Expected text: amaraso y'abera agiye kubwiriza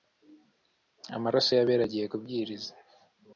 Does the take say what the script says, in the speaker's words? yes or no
yes